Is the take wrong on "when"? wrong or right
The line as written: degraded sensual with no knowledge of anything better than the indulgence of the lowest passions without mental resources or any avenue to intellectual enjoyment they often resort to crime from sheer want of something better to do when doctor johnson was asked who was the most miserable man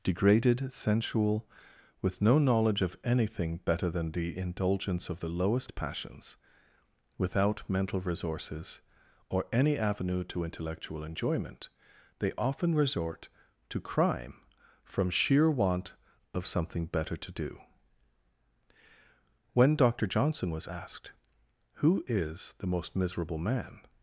right